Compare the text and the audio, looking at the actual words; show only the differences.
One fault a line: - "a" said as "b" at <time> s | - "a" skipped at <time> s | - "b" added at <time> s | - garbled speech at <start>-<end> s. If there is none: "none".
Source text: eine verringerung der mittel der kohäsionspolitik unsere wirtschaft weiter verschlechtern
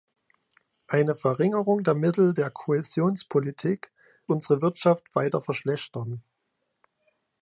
none